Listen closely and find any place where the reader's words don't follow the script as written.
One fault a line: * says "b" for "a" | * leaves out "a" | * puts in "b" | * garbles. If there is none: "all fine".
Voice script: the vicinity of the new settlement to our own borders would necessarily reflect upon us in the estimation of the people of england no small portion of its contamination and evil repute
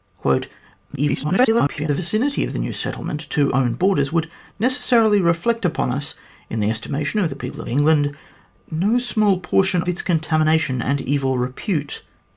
* garbles
* leaves out "our"
* leaves out "of"